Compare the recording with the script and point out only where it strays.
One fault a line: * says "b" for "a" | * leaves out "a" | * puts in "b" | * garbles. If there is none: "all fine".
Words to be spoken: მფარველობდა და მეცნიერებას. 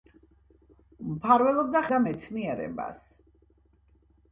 all fine